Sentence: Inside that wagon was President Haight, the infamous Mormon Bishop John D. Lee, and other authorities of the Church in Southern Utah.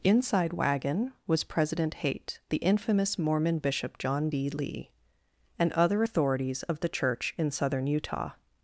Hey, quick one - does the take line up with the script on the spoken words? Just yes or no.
no